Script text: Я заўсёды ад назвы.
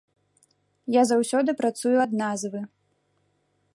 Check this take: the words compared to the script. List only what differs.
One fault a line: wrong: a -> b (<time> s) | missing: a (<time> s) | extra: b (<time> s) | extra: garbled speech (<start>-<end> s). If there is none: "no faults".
extra: працую (1.6 s)